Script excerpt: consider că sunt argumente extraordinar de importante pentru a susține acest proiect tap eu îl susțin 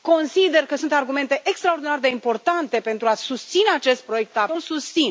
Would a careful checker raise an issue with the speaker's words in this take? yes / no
no